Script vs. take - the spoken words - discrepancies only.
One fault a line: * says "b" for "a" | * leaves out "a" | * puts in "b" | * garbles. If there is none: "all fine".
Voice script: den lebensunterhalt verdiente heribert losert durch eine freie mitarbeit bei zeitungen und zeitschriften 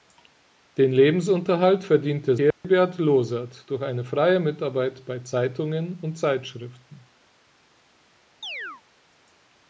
all fine